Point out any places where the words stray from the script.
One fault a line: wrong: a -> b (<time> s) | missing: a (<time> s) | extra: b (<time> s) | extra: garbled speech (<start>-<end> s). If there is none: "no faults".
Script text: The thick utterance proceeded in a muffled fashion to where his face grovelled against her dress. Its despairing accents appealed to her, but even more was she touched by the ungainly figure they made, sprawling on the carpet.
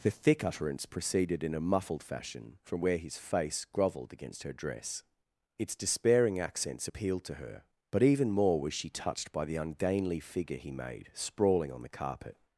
wrong: to -> from (2.6 s)
wrong: they -> he (10.6 s)